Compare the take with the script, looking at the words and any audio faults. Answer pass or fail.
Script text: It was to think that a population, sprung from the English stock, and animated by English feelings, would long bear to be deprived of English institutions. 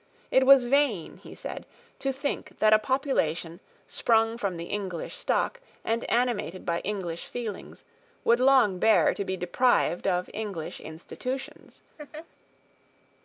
fail